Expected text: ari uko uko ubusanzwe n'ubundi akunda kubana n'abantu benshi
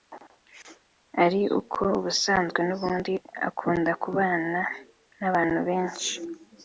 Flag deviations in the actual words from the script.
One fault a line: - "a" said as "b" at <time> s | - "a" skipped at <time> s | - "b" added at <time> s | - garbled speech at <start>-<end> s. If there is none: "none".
- "uko" skipped at 1.8 s